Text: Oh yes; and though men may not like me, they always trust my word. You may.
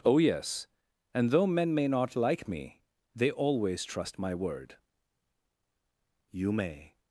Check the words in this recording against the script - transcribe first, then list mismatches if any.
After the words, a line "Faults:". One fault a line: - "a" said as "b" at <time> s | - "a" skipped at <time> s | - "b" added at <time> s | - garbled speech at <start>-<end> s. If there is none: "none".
Oh yes; and though men may not like me, they always trust my word. You may.
Faults:
none